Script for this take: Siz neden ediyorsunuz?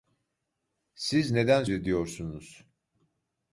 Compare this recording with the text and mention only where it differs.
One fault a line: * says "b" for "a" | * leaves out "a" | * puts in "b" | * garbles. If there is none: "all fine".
all fine